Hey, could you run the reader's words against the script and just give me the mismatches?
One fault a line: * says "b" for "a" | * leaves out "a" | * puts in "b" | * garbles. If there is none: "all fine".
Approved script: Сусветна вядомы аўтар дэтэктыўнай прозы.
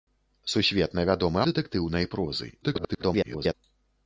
* leaves out "аўтар"
* garbles